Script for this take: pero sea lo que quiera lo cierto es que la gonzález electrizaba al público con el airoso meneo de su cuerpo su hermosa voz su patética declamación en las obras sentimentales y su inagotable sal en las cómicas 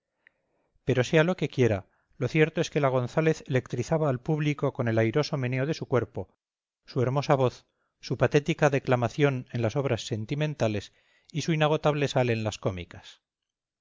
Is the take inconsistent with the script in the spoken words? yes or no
no